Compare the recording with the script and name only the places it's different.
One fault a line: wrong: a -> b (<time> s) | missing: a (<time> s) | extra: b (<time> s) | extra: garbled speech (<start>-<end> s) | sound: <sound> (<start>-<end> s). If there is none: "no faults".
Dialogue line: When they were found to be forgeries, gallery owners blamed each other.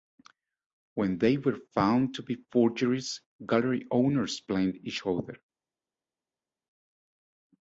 no faults